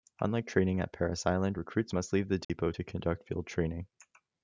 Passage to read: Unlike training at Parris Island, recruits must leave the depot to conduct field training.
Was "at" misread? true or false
false